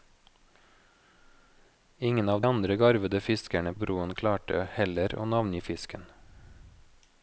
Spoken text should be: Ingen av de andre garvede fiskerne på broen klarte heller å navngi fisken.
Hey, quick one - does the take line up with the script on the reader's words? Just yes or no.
no